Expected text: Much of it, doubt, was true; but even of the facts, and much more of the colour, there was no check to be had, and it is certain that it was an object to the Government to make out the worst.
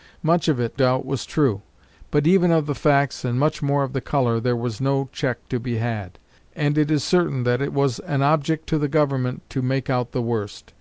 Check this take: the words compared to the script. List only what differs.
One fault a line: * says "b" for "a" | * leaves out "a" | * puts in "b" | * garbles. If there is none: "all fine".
all fine